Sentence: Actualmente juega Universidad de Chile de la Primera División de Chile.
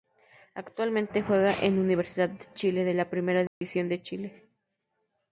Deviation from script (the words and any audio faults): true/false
true